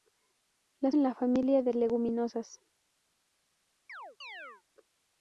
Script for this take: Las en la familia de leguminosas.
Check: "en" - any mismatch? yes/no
no